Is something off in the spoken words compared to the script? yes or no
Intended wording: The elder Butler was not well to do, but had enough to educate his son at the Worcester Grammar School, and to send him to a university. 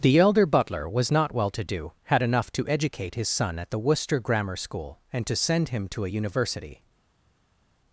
yes